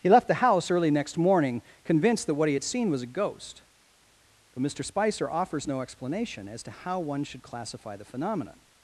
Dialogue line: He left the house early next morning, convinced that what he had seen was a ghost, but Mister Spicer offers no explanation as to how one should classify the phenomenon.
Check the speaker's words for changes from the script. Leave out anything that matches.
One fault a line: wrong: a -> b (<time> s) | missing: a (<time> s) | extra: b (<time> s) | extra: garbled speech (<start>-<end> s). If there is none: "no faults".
no faults